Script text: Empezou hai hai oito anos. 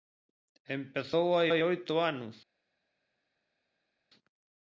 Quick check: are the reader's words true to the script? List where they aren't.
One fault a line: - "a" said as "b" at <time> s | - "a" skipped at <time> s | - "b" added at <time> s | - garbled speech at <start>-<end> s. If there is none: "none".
none